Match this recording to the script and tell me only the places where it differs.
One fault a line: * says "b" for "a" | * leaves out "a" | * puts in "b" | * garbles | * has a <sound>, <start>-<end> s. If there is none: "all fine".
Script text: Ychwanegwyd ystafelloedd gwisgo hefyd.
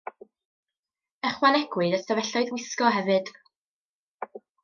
all fine